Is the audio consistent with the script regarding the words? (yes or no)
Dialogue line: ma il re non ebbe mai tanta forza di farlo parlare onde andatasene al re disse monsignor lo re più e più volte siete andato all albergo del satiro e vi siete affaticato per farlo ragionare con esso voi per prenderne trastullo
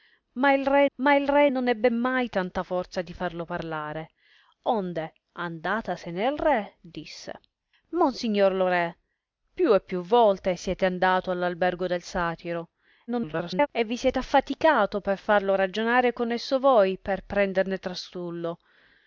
no